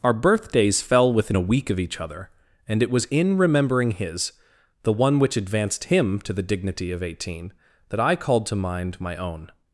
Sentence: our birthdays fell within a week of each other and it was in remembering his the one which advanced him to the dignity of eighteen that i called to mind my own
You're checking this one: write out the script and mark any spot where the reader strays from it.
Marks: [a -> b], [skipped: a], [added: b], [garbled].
our birthdays fell within a week of each other and it was in remembering his the one which advanced him to the dignity of eighteen that i called to mind my own